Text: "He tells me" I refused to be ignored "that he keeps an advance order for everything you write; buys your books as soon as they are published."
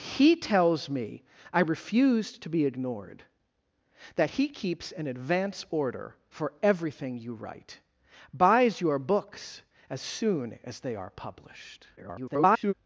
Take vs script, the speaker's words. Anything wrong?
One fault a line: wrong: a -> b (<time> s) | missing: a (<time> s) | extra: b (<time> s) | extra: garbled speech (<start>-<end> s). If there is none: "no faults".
extra: garbled speech (12.0-12.7 s)